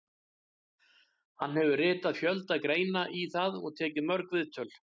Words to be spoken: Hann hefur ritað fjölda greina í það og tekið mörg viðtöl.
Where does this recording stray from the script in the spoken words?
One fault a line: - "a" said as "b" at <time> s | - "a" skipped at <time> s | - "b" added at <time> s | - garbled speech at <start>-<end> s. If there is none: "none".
none